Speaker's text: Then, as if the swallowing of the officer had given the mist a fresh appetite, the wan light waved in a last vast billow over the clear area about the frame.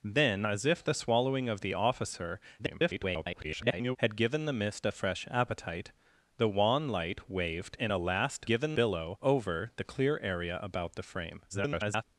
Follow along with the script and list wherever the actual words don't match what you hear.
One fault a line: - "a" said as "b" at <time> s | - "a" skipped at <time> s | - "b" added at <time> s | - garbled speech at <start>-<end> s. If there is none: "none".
- garbled speech at 2.6-4.0 s
- "vast" said as "given" at 8.5 s
- garbled speech at 11.5-12.0 s